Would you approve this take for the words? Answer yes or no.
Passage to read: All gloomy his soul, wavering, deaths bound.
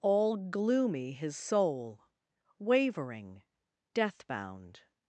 no